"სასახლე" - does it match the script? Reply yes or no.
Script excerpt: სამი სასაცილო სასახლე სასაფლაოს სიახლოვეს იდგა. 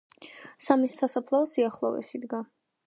no